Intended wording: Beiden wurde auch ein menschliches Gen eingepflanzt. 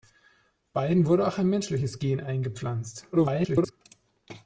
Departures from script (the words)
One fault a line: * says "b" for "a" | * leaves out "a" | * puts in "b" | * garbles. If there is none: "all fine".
* garbles